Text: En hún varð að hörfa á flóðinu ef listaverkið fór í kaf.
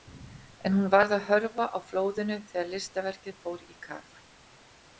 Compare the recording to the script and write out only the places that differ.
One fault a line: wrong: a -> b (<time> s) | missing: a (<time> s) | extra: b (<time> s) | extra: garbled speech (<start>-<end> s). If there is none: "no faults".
wrong: ef -> þegar (2.5 s)